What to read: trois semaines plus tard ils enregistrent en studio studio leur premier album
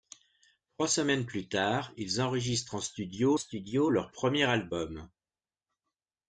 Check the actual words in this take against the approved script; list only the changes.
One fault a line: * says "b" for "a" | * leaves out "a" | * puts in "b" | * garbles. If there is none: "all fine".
all fine